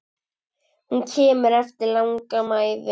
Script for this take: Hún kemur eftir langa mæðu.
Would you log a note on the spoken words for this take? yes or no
no